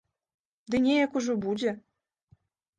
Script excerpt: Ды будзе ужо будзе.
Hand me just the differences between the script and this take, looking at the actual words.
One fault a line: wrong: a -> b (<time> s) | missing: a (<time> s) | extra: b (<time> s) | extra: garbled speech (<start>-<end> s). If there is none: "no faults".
wrong: будзе -> неяк (0.8 s)